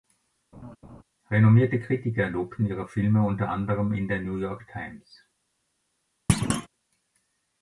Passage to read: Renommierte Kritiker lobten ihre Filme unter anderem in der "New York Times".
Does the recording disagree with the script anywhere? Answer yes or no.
no